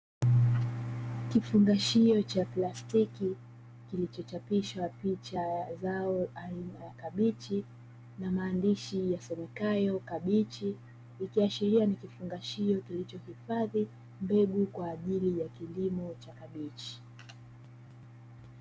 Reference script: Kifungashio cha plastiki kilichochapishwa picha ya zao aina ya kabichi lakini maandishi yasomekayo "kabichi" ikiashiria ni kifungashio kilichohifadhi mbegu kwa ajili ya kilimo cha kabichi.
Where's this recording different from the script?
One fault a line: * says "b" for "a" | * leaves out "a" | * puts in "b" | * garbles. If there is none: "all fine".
* says "na" for "lakini"